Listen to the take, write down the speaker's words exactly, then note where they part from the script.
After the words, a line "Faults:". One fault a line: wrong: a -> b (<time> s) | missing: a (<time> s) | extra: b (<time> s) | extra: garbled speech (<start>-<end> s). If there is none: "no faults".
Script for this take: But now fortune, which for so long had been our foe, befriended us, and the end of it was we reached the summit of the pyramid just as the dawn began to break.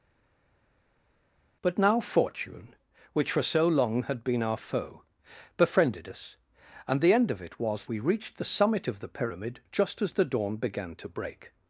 But now fortune, which for so long had been our foe, befriended us, and the end of it was we reached the summit of the pyramid just as the dawn began to break.
Faults:
no faults